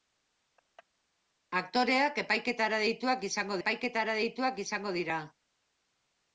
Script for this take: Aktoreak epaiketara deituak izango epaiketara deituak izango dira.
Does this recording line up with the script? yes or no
yes